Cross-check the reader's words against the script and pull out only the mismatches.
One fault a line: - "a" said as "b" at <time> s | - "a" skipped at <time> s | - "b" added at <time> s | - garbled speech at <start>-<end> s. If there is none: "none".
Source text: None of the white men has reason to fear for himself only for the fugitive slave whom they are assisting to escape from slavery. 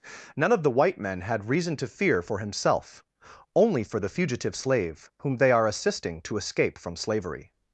- "has" said as "had" at 1.2 s